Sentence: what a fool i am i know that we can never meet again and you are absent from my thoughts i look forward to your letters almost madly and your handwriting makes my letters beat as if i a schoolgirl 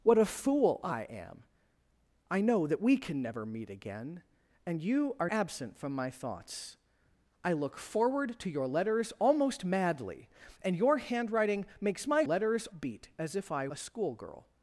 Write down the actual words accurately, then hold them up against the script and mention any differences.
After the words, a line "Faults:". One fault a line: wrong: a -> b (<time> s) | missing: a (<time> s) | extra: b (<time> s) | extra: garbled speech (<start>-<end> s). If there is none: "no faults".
what a fool i am i know that we can never meet again and you are absent from my thoughts i look forward to your letters almost madly and your handwriting makes my letters beat as if i a schoolgirl
Faults:
no faults